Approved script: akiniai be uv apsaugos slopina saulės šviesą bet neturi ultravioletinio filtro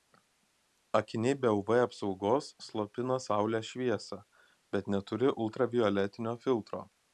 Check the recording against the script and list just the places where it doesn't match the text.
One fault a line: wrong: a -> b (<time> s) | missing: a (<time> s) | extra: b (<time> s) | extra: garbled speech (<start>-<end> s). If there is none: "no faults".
no faults